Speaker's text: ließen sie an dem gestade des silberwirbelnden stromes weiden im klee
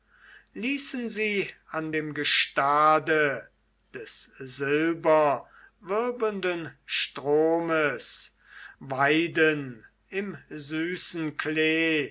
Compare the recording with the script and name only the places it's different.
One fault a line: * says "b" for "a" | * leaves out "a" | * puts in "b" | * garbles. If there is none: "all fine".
* puts in "süßen"